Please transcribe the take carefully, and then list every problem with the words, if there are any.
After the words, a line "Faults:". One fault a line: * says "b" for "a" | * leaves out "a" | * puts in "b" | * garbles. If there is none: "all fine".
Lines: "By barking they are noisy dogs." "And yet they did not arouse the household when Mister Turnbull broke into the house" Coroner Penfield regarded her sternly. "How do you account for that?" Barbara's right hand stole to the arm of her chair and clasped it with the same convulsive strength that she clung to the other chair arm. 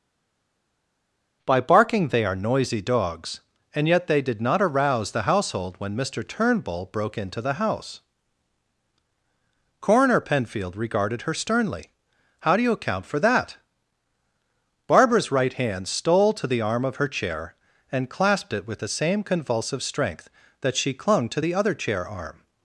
"By barking they are noisy dogs." "And yet they did not arouse the household when Mister Turnbull broke into the house" Coroner Penfield regarded her sternly. "How do you account for that?" Barbara's right hand stole to the arm of her chair and clasped it with the same convulsive strength that she clung to the other chair arm.
Faults:
all fine